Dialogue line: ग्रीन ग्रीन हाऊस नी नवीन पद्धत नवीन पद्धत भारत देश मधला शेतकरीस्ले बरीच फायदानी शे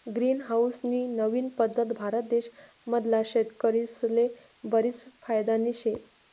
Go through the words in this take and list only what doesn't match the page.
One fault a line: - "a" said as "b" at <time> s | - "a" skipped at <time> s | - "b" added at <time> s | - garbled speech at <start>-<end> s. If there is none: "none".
- "ग्रीन" skipped at 0.4 s
- "नवीन पद्धत" skipped at 1.9 s